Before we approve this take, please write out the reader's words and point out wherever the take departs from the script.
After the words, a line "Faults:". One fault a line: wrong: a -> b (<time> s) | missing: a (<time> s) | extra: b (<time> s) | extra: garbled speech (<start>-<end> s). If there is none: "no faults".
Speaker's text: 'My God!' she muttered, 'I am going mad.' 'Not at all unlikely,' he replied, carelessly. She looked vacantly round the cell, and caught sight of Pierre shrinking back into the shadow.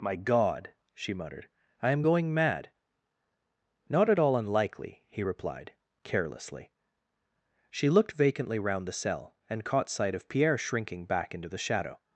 'My God!' she muttered, 'I am going mad.' 'Not at all unlikely,' he replied, carelessly. She looked vacantly round the cell, and caught sight of Pierre shrinking back into the shadow.
Faults:
no faults